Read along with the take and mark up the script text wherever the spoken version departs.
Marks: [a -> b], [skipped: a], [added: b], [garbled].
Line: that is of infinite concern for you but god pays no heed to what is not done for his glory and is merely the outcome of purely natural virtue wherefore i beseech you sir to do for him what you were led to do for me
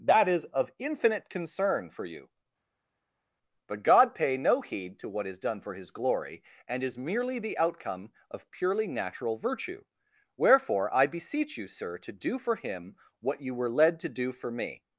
that is of infinite concern for you but god [pays -> pay] no heed to what is [skipped: not] done for his glory and is merely the outcome of purely natural virtue wherefore i beseech you sir to do for him what you were led to do for me